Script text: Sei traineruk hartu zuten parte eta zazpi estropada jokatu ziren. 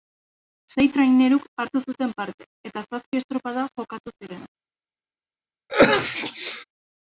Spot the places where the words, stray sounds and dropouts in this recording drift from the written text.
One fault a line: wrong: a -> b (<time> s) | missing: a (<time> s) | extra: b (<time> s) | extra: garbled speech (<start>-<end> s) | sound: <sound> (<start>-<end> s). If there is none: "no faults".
sound: sneeze (5.7-6.6 s)